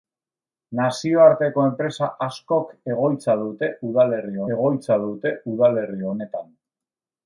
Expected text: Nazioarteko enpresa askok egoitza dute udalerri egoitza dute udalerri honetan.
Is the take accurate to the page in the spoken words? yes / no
yes